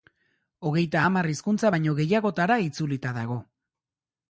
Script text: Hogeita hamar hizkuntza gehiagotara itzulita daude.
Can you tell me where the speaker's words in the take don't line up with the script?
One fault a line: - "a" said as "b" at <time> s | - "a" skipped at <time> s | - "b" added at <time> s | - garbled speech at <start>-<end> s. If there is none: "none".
- "baino" added at 1.8 s
- "daude" said as "dago" at 3.2 s